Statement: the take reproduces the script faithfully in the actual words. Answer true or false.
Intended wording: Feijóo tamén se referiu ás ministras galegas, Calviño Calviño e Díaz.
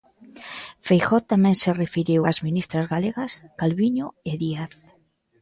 false